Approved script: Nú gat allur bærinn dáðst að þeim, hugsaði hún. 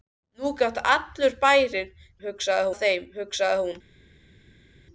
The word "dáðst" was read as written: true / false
false